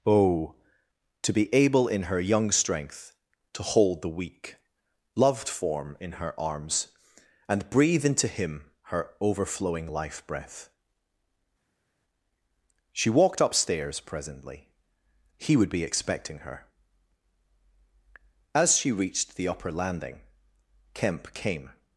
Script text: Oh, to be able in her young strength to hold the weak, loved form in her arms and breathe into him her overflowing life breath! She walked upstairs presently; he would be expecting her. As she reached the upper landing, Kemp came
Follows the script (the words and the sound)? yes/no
yes